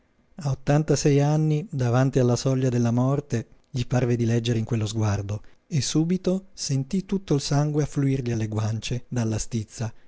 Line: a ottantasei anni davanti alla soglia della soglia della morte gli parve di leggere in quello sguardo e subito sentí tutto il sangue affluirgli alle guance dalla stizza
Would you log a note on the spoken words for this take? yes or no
yes